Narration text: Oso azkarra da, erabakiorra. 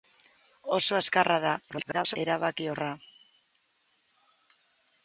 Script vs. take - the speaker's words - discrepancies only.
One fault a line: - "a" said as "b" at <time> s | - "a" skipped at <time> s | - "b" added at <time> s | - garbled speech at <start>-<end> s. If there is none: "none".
- garbled speech at 1.7-2.2 s